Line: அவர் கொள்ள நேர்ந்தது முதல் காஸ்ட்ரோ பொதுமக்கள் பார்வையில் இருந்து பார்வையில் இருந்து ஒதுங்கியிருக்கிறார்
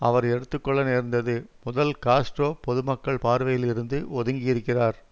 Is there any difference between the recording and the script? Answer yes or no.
yes